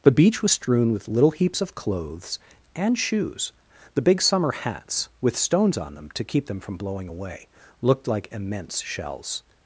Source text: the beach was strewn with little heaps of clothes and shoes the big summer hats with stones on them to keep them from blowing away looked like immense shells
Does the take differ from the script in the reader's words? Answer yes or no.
no